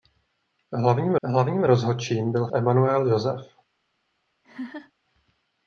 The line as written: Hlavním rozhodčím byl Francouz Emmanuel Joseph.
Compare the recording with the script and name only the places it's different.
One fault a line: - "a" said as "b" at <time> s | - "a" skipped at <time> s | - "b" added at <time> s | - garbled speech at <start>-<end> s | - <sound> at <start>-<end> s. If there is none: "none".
- "hlavním" added at 1.2 s
- "Francouz" skipped at 2.5 s
- laugh at 4.4-4.9 s